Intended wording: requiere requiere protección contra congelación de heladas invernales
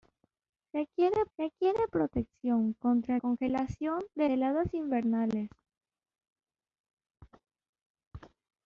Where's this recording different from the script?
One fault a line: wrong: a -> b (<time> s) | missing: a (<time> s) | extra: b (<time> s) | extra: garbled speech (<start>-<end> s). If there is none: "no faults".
no faults